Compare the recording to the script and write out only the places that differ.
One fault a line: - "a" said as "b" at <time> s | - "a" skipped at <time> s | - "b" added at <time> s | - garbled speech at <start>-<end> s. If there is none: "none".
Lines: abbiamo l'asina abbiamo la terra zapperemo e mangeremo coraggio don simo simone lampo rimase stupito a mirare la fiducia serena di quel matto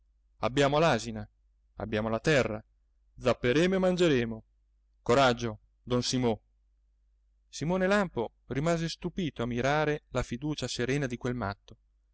none